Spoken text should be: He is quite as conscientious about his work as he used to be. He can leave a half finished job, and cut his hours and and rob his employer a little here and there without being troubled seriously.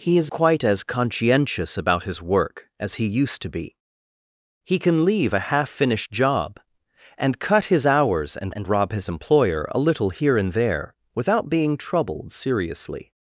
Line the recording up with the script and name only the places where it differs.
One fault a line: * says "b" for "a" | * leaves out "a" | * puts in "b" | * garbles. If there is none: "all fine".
all fine